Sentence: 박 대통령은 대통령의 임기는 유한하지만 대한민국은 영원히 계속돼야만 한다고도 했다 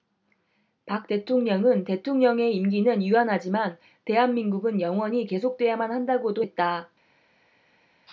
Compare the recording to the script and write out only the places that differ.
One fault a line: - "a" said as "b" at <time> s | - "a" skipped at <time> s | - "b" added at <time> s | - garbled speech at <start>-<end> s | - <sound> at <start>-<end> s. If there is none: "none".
none